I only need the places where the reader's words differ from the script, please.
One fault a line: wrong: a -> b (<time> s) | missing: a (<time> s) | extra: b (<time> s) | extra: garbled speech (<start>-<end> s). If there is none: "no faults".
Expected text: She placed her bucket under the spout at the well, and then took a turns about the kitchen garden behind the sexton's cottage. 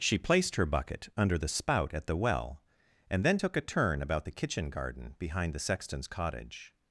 wrong: turns -> turn (3.6 s)